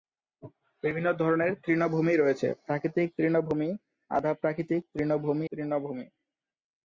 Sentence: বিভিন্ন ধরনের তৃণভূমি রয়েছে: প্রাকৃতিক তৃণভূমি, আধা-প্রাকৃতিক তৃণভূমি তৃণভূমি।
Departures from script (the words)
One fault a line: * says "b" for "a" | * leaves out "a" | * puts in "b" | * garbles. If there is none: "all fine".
all fine